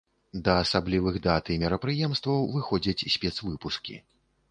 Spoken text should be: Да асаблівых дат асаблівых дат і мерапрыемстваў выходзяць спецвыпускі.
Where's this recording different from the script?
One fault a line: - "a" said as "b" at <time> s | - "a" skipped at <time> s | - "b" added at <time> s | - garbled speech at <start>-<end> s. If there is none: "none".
- "асаблівых дат" skipped at 1.5 s